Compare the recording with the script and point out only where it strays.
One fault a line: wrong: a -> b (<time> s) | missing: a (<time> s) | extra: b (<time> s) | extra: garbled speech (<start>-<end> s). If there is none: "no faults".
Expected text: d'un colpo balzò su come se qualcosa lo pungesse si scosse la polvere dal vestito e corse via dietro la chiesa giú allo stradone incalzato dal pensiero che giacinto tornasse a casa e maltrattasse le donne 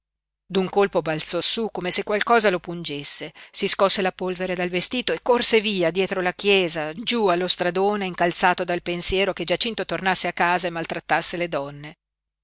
no faults